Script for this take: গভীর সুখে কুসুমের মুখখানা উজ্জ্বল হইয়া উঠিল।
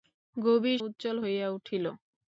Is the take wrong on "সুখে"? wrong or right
wrong